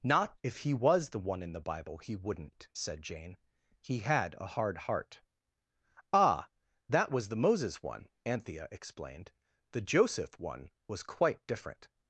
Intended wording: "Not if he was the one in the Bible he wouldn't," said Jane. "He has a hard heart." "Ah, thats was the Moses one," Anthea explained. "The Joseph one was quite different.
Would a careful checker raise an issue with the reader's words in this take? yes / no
yes